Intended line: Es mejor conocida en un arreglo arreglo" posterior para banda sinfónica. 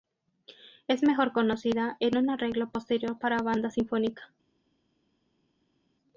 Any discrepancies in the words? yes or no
yes